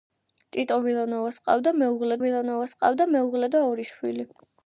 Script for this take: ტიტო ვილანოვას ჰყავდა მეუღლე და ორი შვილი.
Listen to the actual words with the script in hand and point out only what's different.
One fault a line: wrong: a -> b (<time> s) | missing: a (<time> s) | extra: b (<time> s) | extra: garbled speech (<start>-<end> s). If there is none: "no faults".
extra: ვილანოვას ჰყავდა მეუღლე (2.2 s)